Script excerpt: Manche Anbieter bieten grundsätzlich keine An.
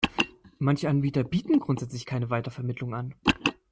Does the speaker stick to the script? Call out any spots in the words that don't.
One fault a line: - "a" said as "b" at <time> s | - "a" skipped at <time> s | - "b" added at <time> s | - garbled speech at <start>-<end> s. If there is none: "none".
- "Weitervermittlung" added at 2.3 s